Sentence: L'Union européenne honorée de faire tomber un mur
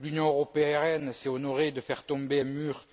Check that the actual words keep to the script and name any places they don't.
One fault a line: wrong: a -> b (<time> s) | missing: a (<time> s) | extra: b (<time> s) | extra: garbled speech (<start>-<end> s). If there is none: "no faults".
extra: s'est (1.1 s)